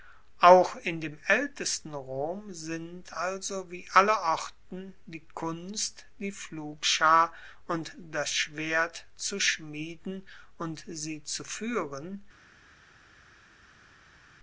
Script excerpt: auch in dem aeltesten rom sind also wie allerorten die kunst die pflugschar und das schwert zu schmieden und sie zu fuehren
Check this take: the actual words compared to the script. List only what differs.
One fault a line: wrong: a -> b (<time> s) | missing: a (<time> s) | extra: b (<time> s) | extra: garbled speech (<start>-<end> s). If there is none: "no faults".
no faults